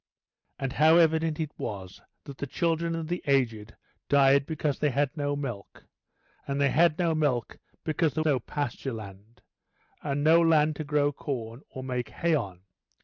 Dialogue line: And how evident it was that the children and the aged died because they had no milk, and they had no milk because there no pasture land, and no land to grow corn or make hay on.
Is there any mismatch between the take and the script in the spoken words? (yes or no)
no